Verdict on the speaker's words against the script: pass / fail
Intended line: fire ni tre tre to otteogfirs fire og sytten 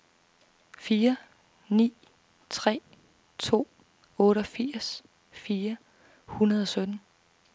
fail